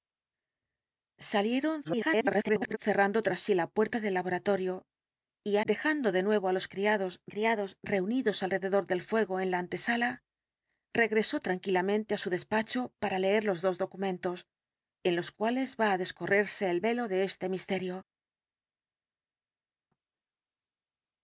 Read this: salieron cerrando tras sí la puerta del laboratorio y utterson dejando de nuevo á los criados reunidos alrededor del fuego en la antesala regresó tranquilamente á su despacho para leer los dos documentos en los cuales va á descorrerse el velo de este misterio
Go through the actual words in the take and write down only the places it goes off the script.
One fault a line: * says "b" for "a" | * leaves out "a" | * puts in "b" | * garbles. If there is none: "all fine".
* garbles
* leaves out "utterson"
* puts in "criados"